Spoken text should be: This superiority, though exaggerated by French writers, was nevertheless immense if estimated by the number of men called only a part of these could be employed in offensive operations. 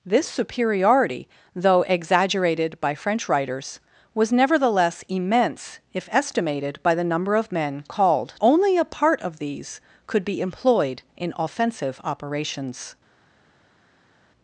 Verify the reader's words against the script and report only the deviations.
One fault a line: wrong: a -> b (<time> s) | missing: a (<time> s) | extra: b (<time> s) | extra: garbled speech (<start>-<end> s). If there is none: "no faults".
no faults